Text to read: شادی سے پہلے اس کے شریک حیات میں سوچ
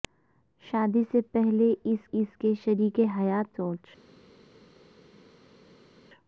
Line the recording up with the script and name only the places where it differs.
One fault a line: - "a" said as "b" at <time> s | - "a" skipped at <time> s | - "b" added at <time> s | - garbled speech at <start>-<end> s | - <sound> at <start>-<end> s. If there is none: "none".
- "اس" added at 2.1 s
- "میں" skipped at 3.6 s